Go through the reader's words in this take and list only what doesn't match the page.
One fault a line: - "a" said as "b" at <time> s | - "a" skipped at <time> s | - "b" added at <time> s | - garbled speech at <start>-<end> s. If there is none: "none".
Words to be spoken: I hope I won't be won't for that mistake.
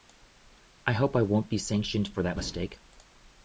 - "won't" said as "sanctioned" at 1.6 s